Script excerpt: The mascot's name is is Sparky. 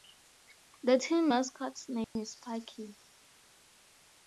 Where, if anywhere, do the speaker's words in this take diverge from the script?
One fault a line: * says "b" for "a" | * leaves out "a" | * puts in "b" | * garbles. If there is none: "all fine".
* puts in "team"
* leaves out "is"